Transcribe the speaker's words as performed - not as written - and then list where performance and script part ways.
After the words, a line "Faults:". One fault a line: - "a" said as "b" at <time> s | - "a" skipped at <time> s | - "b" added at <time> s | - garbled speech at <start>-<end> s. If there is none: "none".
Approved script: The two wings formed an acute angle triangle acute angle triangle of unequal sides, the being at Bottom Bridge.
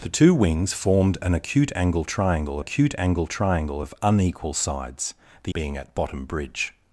The two wings formed an acute angle triangle acute angle triangle of unequal sides, the being at Bottom Bridge.
Faults:
none